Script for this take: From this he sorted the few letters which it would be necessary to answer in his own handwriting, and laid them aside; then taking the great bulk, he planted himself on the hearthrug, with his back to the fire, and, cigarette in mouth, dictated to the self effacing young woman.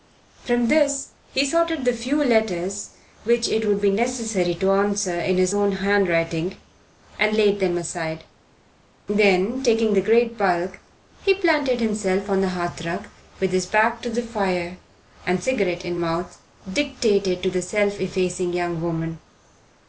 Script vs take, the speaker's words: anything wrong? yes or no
no